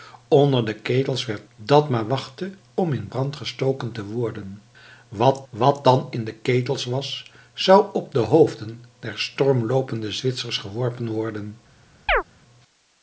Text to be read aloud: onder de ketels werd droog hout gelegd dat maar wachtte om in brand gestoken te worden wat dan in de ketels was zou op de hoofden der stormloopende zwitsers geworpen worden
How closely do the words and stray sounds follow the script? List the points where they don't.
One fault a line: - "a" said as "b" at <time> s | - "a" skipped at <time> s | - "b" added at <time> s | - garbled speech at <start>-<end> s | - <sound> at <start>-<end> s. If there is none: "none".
- "droog hout gelegd" skipped at 1.4 s
- "wat" added at 5.5 s
- chirp at 12.1-12.2 s